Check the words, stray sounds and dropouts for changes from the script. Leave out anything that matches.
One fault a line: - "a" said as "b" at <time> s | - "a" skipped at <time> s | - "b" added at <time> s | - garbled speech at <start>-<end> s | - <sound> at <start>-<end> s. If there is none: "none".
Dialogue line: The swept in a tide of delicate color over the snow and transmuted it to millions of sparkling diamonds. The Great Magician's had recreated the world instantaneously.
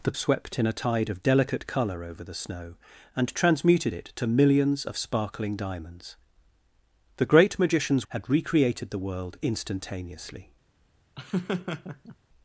- laugh at 11.1-12.2 s